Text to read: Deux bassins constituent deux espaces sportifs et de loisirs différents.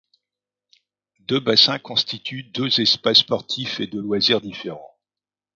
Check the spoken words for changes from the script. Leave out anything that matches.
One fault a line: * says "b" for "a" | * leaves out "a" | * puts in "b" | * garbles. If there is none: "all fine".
all fine